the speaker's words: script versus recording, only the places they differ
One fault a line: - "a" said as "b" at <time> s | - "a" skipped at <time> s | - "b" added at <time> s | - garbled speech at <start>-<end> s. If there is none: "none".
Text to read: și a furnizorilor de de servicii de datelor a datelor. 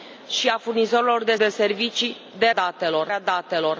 none